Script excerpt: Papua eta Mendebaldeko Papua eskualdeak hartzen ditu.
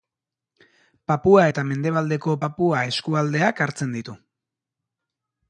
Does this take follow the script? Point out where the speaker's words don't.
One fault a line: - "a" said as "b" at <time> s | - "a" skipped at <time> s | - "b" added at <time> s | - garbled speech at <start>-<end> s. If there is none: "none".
none